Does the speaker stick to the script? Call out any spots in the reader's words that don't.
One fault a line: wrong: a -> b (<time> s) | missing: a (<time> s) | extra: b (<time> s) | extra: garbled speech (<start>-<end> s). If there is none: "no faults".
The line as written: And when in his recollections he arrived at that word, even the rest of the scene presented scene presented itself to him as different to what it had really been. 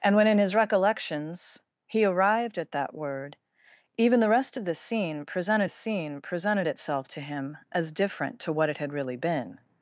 no faults